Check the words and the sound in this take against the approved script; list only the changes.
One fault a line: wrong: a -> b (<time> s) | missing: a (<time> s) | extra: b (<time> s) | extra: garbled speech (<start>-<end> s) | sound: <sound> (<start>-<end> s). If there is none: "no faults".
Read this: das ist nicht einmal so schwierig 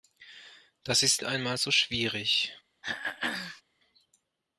missing: nicht (1.2 s)
sound: throat clearing (2.8-3.6 s)